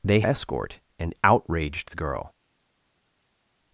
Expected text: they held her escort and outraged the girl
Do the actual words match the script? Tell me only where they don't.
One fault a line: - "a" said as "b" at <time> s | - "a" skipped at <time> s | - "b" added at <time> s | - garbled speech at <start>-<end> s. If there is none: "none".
- "held her" skipped at 0.2 s